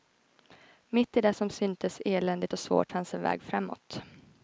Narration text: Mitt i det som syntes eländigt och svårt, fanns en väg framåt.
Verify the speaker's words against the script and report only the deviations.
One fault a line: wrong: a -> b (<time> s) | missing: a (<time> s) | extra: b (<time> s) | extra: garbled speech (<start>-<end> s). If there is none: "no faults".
no faults